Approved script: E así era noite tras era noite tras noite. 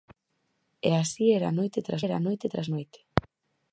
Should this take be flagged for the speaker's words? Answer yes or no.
no